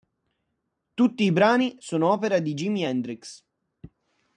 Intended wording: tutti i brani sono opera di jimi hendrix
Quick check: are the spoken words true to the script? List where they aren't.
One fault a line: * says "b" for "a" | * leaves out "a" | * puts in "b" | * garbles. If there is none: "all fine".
all fine